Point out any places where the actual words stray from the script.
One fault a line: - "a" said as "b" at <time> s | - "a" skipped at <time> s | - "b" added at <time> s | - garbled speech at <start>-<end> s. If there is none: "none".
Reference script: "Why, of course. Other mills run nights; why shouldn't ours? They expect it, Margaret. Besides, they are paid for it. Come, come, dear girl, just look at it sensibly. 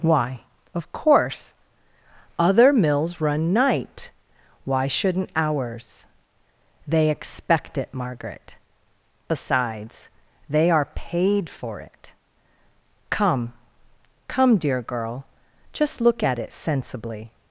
- "nights" said as "night" at 3.5 s